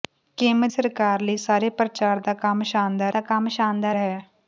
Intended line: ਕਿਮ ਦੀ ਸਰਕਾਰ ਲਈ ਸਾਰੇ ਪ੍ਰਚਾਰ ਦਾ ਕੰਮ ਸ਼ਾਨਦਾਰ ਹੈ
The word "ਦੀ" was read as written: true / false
false